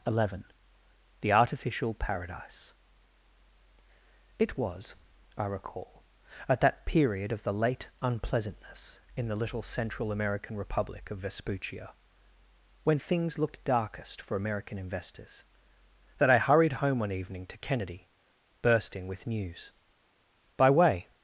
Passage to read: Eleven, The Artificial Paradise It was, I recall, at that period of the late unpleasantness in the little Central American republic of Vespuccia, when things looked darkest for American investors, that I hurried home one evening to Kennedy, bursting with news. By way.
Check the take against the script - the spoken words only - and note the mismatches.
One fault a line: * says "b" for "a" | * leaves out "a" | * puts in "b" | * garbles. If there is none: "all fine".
all fine